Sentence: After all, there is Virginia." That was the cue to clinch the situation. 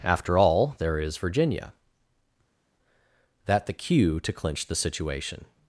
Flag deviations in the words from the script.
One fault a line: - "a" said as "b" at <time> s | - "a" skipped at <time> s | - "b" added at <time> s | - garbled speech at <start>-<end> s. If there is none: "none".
- "was" skipped at 3.7 s